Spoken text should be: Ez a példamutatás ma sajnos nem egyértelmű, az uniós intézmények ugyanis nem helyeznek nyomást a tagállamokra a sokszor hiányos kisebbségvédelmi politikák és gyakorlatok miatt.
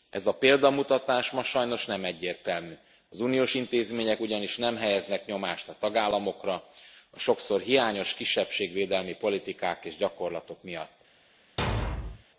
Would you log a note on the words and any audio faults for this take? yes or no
yes